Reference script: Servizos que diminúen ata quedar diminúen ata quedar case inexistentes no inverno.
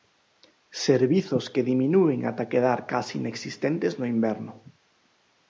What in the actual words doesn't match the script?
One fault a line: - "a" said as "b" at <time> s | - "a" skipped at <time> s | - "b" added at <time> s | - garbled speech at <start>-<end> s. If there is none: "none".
- "diminúen ata quedar" skipped at 2.8 s